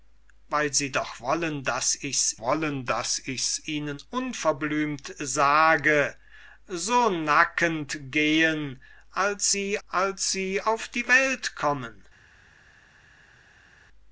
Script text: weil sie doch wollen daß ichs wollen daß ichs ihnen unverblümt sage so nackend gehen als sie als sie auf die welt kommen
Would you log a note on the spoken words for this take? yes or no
no